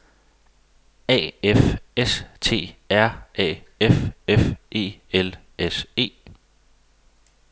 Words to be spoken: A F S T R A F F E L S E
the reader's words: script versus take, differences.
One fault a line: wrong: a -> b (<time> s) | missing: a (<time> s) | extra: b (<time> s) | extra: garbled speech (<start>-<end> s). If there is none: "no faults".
no faults